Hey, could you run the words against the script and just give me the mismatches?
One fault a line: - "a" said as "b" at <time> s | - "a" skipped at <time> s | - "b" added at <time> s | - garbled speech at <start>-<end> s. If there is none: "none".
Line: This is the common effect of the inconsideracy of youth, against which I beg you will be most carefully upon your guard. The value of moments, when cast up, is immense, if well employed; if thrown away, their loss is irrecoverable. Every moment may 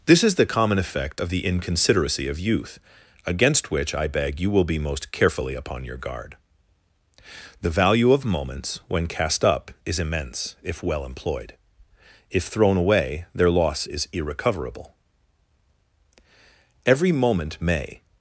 none